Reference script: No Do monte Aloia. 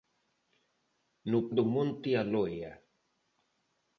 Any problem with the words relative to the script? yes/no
no